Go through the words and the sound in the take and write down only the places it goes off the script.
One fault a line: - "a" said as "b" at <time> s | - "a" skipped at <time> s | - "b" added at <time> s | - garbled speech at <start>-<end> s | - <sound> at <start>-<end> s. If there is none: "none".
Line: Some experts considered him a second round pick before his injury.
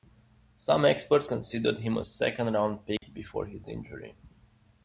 - dropout at 3.0-3.0 s